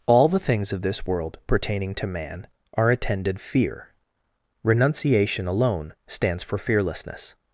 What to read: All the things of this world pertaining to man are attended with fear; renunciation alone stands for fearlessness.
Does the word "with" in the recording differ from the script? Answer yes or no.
yes